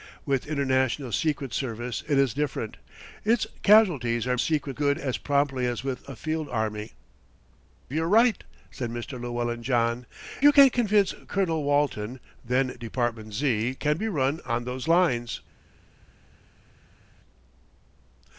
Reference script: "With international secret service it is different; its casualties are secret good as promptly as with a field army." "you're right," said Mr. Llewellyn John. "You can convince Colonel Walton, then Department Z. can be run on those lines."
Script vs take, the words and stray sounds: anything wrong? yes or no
no